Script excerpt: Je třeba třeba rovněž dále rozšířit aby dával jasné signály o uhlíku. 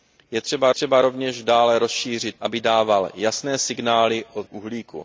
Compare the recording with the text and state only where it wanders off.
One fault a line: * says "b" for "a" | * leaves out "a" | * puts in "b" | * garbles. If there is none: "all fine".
all fine